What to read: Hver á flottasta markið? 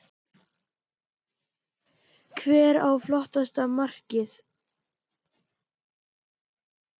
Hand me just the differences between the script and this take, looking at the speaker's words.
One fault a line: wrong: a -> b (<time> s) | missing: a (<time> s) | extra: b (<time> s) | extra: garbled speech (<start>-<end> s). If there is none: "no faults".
no faults